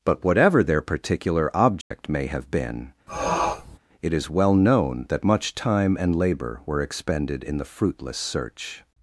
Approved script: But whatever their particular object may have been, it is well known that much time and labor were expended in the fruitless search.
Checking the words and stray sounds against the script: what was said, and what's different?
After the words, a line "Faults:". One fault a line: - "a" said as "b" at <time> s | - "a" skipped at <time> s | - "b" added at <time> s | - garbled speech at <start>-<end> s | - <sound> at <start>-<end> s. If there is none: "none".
But whatever their particular object may have been, it is well known that much time and labor were expended in the fruitless search.
Faults:
- dropout at 1.8-1.9 s
- sniff at 3.1-3.8 s